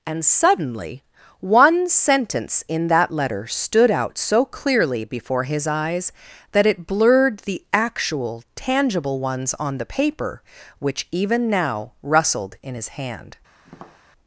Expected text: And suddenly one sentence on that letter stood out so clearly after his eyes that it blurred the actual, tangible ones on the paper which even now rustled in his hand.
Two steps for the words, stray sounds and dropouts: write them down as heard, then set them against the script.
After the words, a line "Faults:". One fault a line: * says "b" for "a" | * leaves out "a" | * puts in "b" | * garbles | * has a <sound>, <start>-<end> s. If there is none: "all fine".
And suddenly one sentence in that letter stood out so clearly before his eyes that it blurred the actual, tangible ones on the paper which even now rustled in his hand.
Faults:
* says "in" for "on"
* says "before" for "after"
* has a tap, 13.6-14.0 s